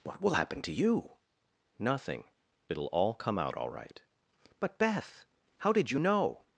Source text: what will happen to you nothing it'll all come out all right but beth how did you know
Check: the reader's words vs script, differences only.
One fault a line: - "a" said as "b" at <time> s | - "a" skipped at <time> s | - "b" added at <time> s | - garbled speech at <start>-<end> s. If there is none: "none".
none